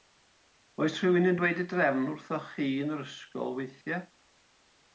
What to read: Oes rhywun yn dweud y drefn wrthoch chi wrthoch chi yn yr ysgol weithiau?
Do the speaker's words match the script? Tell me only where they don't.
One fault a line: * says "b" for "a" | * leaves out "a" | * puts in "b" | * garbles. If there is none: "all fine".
* leaves out "wrthoch chi"